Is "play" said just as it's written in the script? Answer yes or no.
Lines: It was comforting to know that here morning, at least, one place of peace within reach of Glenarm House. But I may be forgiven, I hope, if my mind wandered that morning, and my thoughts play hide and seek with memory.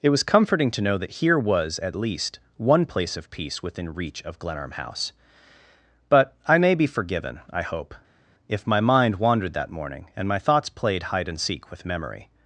no